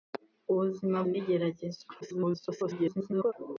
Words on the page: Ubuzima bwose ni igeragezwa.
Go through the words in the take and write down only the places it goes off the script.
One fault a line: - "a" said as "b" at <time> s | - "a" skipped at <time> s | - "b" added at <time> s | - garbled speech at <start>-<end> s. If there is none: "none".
- "bwose" skipped at 1.0 s
- garbled speech at 2.0-3.3 s